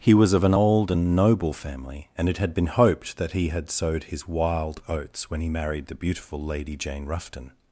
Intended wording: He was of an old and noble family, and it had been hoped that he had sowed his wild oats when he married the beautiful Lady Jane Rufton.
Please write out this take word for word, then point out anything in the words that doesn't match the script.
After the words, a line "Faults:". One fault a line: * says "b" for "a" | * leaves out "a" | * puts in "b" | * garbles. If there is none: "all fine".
He was of an old and noble family, and it had been hoped that he had sowed his wild oats when he married the beautiful Lady Jane Rufton.
Faults:
all fine